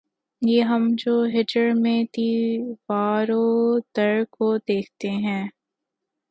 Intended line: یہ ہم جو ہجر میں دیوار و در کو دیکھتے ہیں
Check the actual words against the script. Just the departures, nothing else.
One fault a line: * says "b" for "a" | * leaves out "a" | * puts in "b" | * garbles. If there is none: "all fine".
all fine